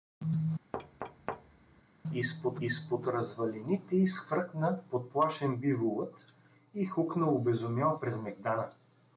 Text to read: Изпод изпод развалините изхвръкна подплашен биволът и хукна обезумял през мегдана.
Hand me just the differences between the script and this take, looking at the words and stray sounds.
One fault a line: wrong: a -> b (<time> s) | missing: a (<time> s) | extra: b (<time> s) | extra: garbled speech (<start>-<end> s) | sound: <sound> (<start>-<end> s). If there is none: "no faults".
sound: thud (0.7-1.8 s)